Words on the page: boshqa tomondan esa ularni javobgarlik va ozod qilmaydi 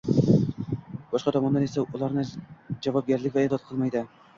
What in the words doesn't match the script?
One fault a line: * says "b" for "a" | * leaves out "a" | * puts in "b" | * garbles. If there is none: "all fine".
all fine